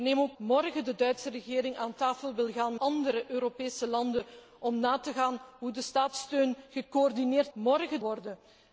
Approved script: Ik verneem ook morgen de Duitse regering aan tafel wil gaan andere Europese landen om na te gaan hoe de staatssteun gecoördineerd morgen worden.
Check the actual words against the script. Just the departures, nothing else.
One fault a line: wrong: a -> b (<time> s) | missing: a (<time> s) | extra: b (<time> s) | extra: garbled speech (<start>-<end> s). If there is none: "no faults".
no faults